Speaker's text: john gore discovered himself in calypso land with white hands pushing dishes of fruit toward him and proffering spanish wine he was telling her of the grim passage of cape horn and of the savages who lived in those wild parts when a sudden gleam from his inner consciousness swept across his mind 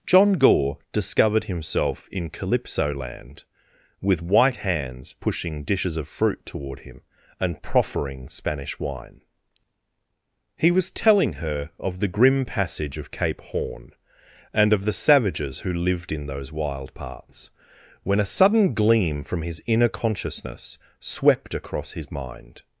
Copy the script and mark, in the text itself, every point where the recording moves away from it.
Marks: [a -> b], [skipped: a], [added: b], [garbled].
john gore discovered himself in calypso land with white hands pushing dishes of fruit toward him and proffering spanish wine he was telling her of the grim passage of cape horn and of the savages who lived in those wild parts when a sudden gleam from his inner consciousness swept across his mind